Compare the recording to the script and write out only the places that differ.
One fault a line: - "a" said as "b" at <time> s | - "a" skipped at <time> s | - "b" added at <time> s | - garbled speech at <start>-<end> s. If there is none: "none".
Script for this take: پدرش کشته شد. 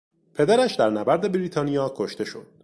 - "در نبرد بریتانیا" added at 0.7 s